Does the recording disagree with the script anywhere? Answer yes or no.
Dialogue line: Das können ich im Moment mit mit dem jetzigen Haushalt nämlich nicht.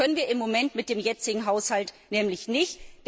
yes